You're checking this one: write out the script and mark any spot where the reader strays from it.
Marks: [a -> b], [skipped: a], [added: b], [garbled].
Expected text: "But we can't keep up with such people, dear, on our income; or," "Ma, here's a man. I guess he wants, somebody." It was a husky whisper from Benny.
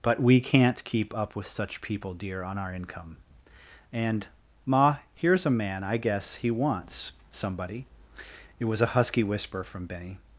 "But we can't keep up with such people, dear, on our income; [or," -> and] "Ma, here's a man. I guess he wants, somebody." It was a husky whisper from Benny.